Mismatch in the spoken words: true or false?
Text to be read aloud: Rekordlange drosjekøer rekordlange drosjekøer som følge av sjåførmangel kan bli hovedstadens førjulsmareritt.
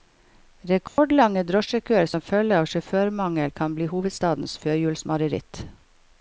true